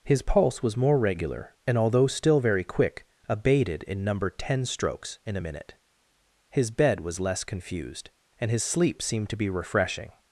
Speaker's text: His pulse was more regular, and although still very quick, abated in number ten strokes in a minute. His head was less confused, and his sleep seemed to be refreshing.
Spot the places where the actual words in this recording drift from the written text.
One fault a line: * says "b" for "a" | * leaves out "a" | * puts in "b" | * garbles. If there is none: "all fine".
* says "bed" for "head"